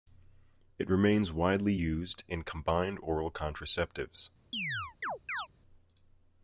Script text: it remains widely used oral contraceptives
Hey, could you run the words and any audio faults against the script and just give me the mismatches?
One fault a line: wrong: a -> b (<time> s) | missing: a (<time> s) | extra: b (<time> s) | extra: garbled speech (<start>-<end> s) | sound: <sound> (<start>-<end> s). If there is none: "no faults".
extra: in combined (2.3 s)
sound: chirp (4.5-5.5 s)